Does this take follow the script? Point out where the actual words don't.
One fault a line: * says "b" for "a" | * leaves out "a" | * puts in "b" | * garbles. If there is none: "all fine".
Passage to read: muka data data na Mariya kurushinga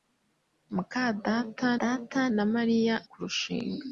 all fine